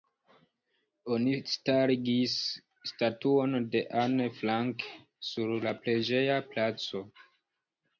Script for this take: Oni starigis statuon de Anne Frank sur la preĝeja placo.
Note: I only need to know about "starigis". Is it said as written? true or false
true